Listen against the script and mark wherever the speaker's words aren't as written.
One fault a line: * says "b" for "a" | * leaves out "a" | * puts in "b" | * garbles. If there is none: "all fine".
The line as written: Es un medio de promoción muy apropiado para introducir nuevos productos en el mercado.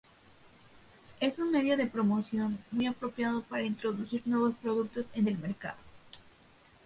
all fine